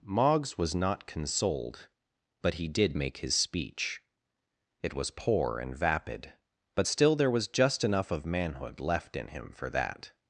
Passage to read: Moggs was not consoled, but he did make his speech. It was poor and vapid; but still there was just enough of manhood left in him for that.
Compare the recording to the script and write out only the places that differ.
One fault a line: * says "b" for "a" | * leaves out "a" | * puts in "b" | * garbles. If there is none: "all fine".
all fine